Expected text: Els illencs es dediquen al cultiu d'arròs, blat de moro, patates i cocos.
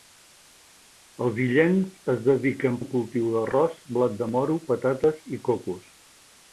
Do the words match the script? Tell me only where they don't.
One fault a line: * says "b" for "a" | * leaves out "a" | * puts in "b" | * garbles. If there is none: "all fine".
all fine